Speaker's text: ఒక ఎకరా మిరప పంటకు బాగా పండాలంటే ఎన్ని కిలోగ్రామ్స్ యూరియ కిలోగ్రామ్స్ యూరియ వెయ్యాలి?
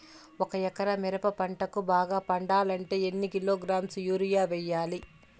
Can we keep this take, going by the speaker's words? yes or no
no